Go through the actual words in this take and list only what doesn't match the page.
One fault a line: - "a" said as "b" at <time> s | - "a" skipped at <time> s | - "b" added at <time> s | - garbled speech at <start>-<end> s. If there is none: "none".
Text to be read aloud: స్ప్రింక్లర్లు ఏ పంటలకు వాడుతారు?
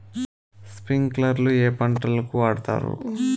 none